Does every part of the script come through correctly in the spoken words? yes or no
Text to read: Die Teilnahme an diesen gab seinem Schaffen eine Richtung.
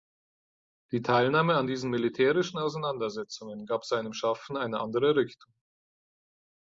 no